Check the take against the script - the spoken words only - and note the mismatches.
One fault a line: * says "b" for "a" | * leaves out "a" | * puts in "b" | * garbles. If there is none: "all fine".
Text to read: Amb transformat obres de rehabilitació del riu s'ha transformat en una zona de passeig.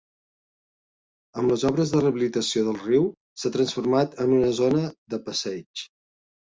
* says "les" for "transformat"